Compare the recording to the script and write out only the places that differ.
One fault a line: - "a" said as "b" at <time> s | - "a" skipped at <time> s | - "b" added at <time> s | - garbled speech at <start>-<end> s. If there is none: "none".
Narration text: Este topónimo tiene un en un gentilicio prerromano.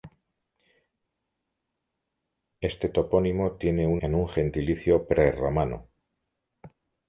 none